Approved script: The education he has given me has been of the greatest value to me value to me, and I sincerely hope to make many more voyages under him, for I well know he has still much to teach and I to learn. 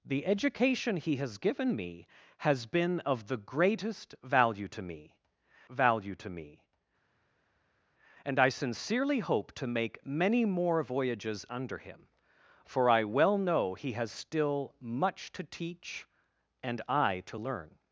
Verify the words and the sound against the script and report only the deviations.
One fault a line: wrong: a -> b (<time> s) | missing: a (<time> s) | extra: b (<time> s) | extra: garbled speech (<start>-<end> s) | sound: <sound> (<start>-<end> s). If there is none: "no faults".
no faults